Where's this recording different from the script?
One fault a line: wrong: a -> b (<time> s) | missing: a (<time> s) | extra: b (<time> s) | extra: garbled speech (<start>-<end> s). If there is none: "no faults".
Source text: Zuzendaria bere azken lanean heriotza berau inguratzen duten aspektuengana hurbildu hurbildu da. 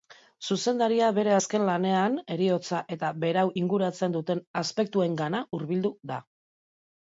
extra: eta (3.0 s)
missing: hurbildu (6.0 s)